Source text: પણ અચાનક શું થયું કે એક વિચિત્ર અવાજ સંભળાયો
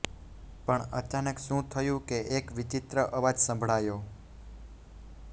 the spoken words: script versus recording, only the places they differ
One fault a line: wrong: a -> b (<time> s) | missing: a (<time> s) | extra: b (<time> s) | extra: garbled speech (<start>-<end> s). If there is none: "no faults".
no faults